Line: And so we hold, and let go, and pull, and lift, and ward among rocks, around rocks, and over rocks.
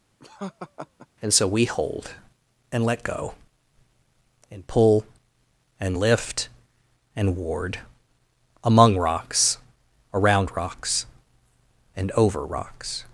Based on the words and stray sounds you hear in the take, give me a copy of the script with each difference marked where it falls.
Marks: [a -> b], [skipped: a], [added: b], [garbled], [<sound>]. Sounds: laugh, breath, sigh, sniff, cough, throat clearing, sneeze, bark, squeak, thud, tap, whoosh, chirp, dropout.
[laugh] And so we hold, and let go, and pull, and lift, and ward among rocks, around rocks, and over rocks.